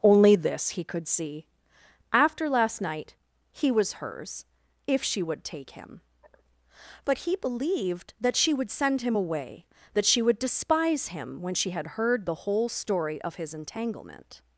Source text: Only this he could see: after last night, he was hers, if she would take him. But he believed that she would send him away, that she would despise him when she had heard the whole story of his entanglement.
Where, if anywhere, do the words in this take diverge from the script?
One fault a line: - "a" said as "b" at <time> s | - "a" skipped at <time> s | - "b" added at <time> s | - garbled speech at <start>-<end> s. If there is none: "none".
none